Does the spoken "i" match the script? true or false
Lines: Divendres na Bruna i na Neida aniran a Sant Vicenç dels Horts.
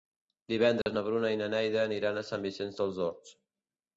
true